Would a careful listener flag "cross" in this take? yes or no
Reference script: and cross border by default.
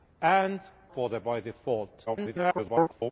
yes